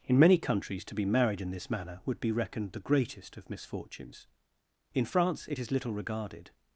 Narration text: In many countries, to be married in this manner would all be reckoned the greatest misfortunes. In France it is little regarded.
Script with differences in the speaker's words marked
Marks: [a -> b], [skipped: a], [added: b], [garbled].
In many countries, to be married in this manner would [skipped: all] be reckoned the greatest [added: of] misfortunes. In France it is little regarded.